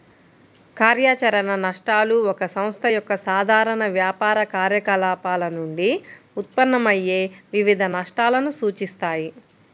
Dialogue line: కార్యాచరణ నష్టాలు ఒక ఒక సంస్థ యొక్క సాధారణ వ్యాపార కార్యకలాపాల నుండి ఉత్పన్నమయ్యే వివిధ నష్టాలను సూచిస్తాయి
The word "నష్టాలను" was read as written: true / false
true